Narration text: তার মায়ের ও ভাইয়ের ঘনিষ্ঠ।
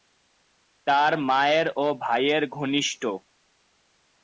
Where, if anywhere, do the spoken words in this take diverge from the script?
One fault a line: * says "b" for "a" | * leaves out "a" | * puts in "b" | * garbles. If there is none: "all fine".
all fine